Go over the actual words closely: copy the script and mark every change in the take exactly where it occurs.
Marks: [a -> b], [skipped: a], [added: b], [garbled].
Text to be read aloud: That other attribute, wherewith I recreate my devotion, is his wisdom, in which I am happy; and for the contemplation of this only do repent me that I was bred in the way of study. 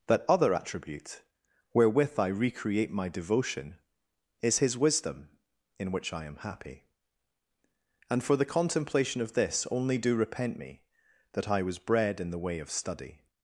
That other attribute, wherewith I recreate my devotion, is his wisdom, in which I am happy; and for the contemplation of this only do repent me that I was bred in the way of study.